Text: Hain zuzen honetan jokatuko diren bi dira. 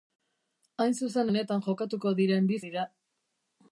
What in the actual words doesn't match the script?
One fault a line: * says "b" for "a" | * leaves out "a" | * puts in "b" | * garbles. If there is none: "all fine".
all fine